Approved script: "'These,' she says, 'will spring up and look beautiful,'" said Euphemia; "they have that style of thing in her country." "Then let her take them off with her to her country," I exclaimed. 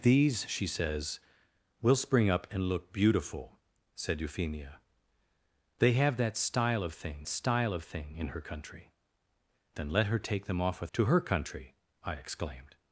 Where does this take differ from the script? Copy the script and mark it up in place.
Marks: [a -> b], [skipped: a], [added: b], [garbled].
"'These,' she says, 'will spring up and look beautiful,'" said Euphemia; "they have that style of thing [added: style of thing] in her country." "Then let her take them off with [skipped: her] to her country," I exclaimed.